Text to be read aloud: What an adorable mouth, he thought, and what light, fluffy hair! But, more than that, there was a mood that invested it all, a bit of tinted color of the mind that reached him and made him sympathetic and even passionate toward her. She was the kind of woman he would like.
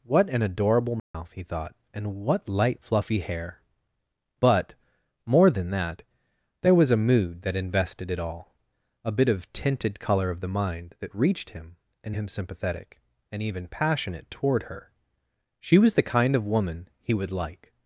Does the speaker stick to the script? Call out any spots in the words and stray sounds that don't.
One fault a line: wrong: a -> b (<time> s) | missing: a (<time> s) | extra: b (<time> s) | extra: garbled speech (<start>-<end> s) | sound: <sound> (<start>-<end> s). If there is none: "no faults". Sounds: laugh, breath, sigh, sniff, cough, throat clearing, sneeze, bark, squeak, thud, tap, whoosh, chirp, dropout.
sound: dropout (1.0-1.1 s)
missing: made (12.2 s)